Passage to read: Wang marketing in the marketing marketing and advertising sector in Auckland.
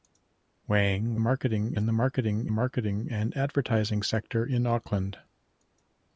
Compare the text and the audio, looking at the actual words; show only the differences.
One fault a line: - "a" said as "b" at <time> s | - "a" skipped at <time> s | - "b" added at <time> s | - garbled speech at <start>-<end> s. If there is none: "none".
none